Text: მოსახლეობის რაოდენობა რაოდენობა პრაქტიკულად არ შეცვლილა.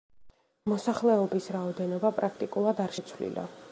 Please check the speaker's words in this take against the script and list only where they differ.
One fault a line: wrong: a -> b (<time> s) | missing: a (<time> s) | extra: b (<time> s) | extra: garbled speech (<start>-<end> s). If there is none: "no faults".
missing: რაოდენობა (2.1 s)